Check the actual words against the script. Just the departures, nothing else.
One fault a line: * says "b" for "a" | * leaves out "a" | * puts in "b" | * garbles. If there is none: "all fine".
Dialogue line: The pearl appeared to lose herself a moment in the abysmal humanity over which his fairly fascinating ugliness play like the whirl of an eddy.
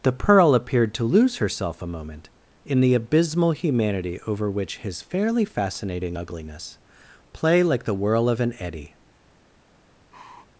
all fine